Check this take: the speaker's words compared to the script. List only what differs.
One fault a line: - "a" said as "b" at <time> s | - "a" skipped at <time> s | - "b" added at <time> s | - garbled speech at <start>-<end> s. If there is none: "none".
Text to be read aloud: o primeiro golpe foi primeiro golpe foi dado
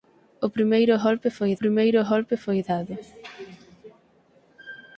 none